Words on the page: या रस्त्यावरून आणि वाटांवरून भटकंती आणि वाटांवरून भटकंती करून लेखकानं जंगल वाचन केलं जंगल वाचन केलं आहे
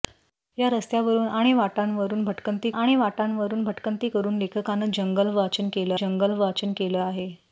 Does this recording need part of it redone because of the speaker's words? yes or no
no